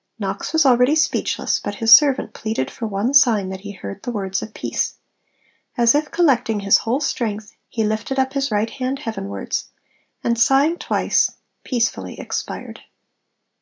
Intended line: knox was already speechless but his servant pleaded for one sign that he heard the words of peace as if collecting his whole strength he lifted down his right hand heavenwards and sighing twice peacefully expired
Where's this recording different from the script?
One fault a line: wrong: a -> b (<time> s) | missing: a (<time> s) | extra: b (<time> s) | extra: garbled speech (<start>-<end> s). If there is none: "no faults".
wrong: down -> up (8.2 s)